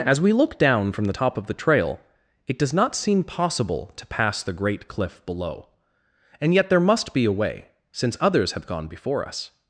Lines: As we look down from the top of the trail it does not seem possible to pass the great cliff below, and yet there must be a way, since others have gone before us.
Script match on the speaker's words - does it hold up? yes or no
yes